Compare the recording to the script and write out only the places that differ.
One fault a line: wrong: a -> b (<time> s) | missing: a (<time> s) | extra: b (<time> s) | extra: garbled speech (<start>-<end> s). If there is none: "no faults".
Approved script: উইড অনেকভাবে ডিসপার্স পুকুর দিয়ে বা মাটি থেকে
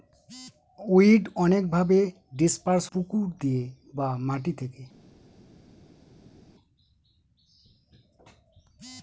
no faults